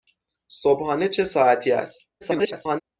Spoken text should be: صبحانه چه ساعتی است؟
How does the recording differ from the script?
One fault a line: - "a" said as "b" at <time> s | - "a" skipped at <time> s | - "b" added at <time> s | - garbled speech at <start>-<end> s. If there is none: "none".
- garbled speech at 2.2-2.8 s